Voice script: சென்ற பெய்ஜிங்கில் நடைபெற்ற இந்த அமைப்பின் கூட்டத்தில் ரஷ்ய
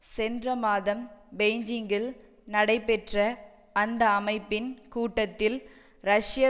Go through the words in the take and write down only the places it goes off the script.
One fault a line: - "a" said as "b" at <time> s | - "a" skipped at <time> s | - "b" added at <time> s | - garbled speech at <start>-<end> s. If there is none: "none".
- "மாதம்" added at 0.6 s
- "இந்த" said as "அந்த" at 3.8 s